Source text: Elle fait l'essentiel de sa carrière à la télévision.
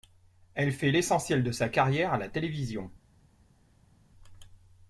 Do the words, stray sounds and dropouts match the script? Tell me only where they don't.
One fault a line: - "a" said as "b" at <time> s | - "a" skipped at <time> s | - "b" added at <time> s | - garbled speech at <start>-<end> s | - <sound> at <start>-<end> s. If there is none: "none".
none